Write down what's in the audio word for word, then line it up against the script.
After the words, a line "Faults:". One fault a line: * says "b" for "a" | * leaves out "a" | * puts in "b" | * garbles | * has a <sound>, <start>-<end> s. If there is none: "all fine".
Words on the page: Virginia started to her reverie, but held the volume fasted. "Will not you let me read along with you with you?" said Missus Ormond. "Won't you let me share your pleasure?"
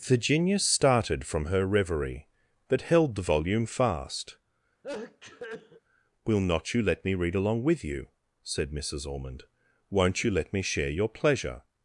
Virginia started from her reverie, but held the volume fast. "Will not you let me read along with you?" said Missus Ormond. "Won't you let me share your pleasure?"
Faults:
* says "from" for "to"
* says "fast" for "fasted"
* has a sneeze, 4.8-5.8 s
* leaves out "with you"